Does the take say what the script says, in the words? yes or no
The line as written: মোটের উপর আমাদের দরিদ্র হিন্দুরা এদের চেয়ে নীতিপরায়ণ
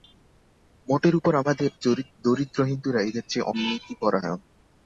yes